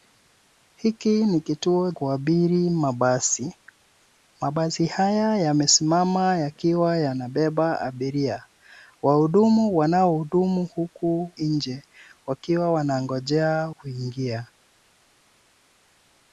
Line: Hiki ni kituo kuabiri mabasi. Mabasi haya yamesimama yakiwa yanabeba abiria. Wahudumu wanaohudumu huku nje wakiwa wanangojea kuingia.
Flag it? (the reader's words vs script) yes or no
no